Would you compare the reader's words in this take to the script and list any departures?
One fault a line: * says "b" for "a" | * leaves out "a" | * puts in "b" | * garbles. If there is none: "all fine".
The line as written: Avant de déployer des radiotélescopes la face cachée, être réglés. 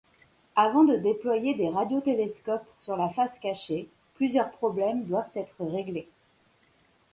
* puts in "sur"
* puts in "plusieurs problèmes doivent"